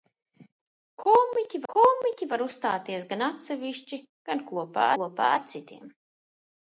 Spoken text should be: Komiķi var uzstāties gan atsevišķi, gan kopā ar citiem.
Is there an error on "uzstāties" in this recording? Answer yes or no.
no